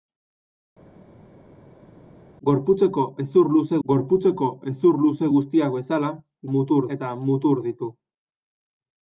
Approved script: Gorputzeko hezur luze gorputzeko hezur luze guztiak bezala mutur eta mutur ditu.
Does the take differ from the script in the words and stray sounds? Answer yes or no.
no